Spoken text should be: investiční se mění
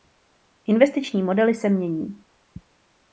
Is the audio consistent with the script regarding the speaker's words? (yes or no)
no